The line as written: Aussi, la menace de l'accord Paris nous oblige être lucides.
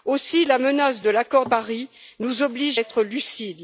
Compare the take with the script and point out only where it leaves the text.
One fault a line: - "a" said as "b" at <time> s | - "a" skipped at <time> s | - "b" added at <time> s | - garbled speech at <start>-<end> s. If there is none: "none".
none